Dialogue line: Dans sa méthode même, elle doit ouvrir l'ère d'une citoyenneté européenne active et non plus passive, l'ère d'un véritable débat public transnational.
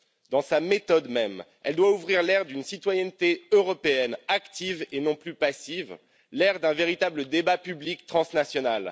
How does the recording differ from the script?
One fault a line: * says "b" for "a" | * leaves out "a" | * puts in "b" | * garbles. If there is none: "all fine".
all fine